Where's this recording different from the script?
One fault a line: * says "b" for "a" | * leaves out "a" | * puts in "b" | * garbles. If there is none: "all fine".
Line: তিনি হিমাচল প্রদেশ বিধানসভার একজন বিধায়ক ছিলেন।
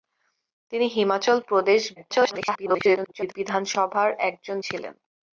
* garbles
* leaves out "বিধায়ক"